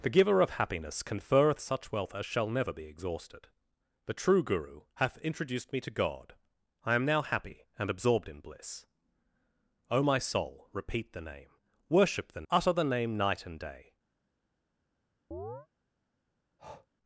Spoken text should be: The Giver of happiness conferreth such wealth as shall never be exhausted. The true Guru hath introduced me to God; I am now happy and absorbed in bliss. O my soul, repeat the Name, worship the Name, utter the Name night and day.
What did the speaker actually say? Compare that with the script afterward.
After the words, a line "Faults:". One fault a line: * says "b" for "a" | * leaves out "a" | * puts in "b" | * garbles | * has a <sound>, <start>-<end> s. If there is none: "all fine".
The Giver of happiness conferreth such wealth as shall never be exhausted. The true Guru hath introduced me to God; I am now happy and absorbed in bliss. O my soul, repeat the Name, worship the Utter the Name night and day.
Faults:
* leaves out "Name"
* has a chirp, 15.3-15.7 s
* has a breath, 16.6-16.9 s